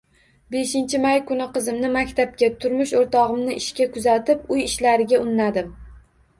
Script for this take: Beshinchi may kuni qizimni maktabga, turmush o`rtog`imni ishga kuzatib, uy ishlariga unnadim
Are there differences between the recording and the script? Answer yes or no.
no